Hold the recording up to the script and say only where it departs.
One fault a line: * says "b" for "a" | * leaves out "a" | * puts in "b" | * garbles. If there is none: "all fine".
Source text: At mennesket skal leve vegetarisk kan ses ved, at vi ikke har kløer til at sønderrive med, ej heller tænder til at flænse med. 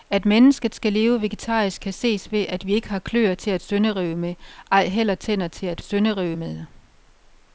* says "sønderrive" for "flænse"